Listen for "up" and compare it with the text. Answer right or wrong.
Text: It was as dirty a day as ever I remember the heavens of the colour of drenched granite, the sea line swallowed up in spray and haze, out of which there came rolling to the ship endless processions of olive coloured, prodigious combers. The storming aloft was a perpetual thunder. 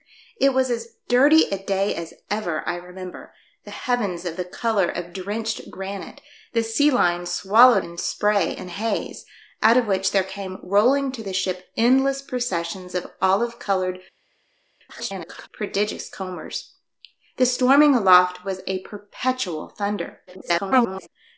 wrong